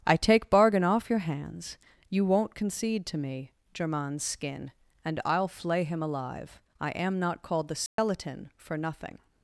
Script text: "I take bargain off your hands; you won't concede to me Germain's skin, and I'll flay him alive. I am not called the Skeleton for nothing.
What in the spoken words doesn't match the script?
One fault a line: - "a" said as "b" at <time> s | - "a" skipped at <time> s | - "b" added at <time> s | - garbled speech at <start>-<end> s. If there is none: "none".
none